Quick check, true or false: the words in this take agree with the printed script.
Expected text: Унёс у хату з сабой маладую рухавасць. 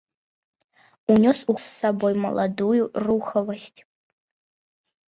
false